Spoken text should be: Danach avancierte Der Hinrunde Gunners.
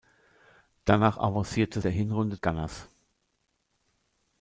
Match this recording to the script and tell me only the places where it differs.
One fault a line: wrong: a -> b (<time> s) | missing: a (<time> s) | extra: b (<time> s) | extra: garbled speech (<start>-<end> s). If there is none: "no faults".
no faults